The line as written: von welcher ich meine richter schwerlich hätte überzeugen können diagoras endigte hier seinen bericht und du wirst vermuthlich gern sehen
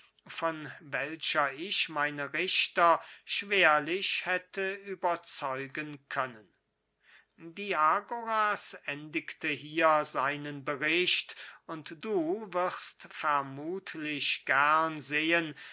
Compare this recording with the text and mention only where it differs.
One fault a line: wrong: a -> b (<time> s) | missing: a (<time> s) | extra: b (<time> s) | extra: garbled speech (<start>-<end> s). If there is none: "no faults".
no faults